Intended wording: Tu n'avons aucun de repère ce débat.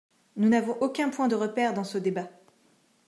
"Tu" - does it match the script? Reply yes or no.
no